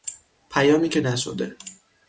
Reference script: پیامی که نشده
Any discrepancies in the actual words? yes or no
no